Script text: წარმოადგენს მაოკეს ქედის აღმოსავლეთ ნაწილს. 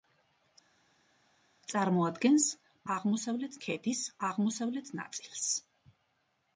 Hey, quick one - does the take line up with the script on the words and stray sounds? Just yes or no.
no